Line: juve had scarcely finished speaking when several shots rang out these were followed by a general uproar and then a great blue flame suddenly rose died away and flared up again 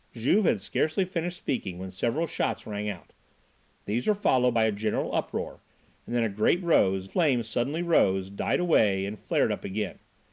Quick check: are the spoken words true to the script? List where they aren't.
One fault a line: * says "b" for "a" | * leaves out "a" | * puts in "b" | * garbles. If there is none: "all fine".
* says "rose" for "blue"